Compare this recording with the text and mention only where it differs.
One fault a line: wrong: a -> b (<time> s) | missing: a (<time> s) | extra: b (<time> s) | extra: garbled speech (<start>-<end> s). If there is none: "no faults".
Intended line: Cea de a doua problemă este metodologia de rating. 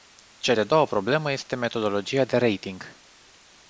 no faults